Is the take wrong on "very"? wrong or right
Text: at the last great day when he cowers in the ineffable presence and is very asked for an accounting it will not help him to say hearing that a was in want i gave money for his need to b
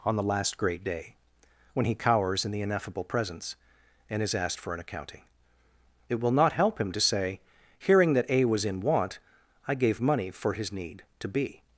wrong